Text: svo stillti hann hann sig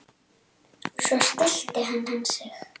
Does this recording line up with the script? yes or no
yes